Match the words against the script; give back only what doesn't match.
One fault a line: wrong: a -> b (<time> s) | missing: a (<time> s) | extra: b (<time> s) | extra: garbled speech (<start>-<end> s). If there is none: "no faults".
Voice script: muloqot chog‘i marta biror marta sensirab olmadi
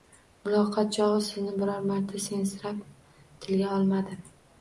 wrong: marta -> sizni (1.2 s)
extra: tilga (3.5 s)